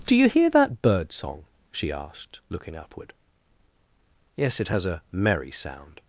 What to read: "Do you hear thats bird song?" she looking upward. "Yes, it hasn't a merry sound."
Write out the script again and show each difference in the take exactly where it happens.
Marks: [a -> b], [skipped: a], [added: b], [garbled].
"Do you hear [thats -> that] bird song?" she [added: asked] looking upward. "Yes, it [hasn't -> has] a merry sound."